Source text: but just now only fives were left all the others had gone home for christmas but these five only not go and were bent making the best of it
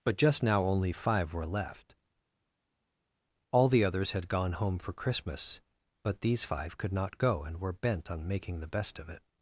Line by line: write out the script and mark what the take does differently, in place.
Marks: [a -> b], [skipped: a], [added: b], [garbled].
but just now only [fives -> five] were left all the others had gone home for christmas but these five [only -> could] not go and were bent [added: on] making the best of it